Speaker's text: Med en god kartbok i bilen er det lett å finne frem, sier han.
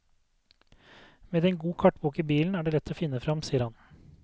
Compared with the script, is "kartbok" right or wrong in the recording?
right